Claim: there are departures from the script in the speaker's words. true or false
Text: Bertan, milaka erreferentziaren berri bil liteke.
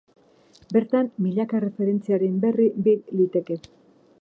false